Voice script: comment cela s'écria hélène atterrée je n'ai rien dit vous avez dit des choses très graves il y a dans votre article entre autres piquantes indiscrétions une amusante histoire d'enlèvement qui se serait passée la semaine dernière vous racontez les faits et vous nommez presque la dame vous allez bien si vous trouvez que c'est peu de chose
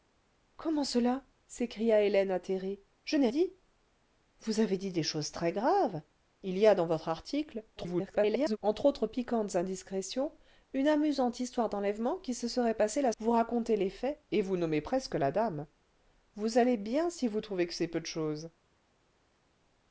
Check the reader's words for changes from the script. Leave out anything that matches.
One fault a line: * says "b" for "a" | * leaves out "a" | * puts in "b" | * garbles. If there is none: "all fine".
* leaves out "rien"
* garbles
* leaves out "semaine dernière"